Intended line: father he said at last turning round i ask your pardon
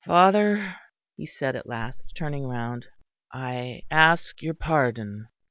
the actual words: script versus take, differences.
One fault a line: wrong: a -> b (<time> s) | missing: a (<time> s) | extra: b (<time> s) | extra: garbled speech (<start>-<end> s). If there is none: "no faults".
no faults